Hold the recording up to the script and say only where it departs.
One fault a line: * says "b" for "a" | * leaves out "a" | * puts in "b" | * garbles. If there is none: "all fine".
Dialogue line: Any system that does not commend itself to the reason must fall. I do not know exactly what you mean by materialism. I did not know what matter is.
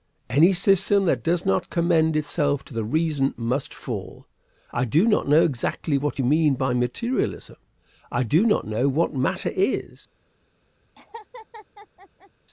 * says "do" for "did"